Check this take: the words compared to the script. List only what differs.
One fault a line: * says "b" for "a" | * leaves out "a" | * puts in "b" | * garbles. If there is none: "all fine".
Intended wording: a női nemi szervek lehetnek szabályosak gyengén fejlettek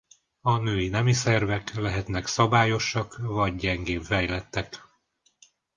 * puts in "vagy"